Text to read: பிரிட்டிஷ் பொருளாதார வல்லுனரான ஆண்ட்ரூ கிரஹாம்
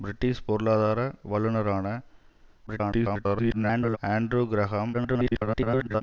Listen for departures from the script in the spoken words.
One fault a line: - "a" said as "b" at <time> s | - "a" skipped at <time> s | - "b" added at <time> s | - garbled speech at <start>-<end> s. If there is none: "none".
- garbled speech at 2.7-4.0 s
- garbled speech at 4.9-6.0 s